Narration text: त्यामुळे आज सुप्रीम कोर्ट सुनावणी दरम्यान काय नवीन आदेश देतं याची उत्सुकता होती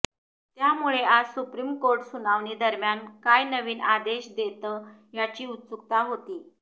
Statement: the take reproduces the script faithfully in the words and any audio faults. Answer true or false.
true